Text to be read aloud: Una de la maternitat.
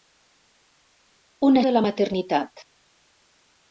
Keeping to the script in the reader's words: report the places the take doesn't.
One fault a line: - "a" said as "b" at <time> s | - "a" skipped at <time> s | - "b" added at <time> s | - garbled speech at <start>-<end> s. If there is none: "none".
none